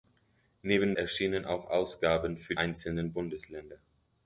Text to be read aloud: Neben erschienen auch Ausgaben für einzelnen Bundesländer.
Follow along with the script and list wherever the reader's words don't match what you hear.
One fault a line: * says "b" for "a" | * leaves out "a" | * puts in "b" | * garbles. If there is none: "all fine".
all fine